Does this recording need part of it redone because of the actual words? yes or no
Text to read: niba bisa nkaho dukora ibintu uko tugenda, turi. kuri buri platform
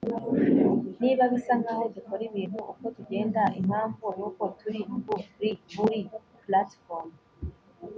yes